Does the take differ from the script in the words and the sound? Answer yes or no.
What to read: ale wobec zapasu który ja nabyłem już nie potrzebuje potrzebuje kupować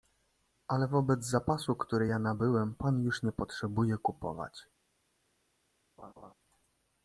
yes